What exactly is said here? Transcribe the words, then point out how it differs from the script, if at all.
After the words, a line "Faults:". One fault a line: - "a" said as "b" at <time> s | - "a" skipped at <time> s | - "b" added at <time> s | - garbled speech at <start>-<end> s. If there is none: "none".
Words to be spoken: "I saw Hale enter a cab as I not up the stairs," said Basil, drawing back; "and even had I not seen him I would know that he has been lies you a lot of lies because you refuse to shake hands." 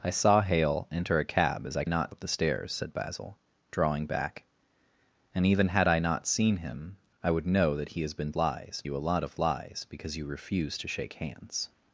"I saw Hale enter a cab as I not up the stairs," said Basil, drawing back; "and even had I not seen him I would know that he has been lies you a lot of lies because you refuse to shake hands."
Faults:
none